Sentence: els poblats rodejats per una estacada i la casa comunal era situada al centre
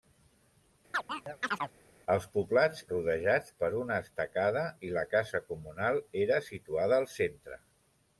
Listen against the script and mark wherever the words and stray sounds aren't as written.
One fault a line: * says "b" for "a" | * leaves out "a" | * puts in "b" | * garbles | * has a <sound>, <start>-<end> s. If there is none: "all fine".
* has a chirp, 0.9-1.7 s